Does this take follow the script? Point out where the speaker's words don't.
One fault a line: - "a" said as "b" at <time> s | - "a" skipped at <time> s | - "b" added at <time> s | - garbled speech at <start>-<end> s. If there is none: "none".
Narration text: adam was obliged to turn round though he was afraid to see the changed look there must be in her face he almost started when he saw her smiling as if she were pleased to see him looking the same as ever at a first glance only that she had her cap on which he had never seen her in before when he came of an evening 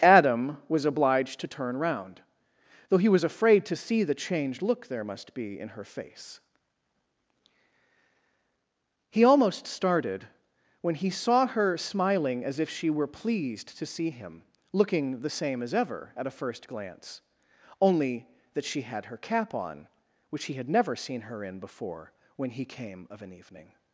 none